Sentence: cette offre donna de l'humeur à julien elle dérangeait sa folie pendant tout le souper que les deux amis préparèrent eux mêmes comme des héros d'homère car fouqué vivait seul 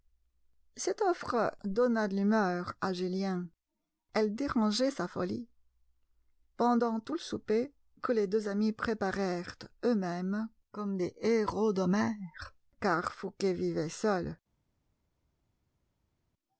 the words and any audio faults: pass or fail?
pass